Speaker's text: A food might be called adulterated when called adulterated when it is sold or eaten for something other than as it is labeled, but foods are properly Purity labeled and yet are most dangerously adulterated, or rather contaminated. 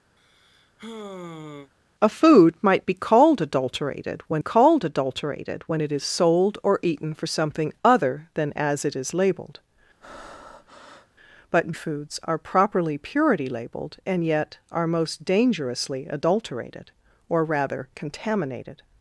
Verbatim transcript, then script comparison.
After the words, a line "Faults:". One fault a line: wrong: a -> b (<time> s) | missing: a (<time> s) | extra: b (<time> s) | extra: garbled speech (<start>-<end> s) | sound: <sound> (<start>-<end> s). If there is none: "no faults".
A food might be called adulterated when called adulterated when it is sold or eaten for something other than as it is labeled, but foods are properly Purity labeled and yet are most dangerously adulterated, or rather contaminated.
Faults:
sound: sigh (0.2-1.7 s)
sound: breath (10.0-11.1 s)